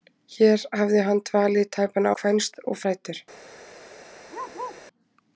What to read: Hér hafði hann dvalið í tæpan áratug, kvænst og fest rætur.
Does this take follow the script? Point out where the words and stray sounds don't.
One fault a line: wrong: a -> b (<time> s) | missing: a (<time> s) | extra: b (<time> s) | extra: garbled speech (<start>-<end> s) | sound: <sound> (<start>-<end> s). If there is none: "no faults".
missing: áratug (2.1 s)
missing: fest (2.8 s)
sound: bark (4.3-4.8 s)